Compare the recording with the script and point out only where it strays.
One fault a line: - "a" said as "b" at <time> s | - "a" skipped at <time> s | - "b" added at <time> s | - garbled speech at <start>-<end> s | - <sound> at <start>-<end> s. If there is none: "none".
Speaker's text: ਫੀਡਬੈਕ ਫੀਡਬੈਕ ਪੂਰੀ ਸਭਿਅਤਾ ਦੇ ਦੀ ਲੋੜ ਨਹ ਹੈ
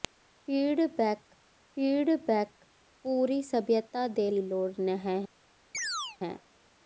- chirp at 5.7-6.2 s